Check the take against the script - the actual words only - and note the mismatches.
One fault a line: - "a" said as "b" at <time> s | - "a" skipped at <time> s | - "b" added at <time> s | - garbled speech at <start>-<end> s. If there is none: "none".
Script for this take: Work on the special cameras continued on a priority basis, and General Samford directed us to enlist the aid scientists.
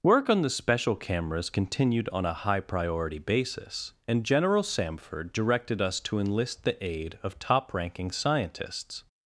- "high" added at 2.3 s
- "of top ranking" added at 7.2 s